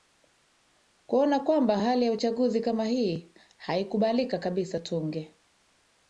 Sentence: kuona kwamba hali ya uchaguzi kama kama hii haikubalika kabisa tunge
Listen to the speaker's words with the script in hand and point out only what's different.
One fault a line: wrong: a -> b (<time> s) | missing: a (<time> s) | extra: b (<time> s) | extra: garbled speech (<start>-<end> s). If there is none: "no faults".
missing: kama (2.8 s)